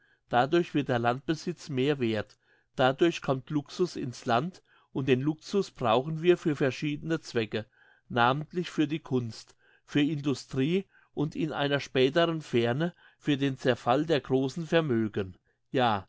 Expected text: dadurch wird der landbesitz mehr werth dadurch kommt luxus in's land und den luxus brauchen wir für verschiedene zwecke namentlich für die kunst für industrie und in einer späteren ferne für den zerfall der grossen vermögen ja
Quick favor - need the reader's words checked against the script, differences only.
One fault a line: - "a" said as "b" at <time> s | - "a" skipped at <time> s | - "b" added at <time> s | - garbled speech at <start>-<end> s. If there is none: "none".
none